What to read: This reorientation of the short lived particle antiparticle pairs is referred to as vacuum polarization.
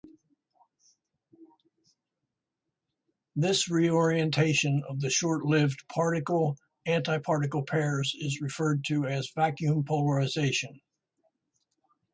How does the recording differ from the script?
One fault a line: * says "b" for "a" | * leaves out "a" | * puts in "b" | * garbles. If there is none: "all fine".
all fine